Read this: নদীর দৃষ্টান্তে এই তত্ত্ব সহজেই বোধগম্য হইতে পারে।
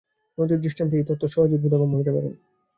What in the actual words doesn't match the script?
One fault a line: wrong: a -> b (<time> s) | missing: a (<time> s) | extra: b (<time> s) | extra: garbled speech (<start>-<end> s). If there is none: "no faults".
no faults